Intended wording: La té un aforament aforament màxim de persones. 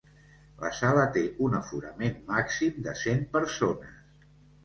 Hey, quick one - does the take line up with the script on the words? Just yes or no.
no